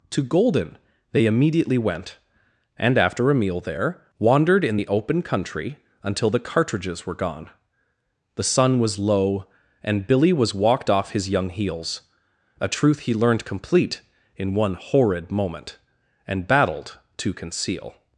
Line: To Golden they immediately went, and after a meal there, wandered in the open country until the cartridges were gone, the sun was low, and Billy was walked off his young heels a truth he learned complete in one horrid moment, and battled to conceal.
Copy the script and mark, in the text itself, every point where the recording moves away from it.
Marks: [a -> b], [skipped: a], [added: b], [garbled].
To Golden they immediately went, and after a meal there, wandered in the open country until the cartridges were gone, the sun was low, and Billy was walked off his young heels a truth he learned complete in one horrid moment, and battled to conceal.